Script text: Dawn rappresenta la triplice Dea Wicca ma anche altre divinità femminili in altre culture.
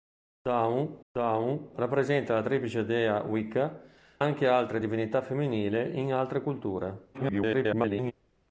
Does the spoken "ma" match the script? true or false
false